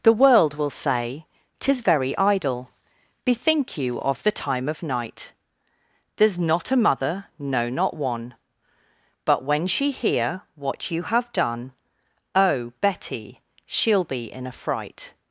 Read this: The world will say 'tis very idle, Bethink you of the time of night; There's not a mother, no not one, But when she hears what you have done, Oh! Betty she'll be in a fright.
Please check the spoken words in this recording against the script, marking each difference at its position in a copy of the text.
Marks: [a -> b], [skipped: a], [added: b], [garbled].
The world will say 'tis very idle, Bethink you of the time of night; There's not a mother, no not one, But when she [hears -> hear] what you have done, Oh! Betty she'll be in a fright.